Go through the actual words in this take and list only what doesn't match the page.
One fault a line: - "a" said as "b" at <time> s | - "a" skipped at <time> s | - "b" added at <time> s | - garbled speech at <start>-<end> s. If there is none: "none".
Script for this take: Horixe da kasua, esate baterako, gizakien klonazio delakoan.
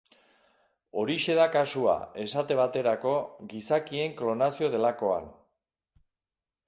none